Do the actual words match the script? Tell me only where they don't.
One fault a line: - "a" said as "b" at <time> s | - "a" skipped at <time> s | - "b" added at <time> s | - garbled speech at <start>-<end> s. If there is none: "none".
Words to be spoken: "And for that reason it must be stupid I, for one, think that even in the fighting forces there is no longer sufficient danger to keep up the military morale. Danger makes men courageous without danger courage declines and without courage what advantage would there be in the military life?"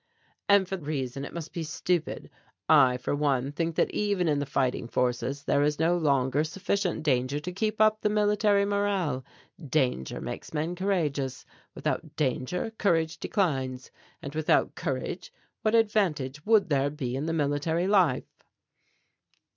- "that" skipped at 0.8 s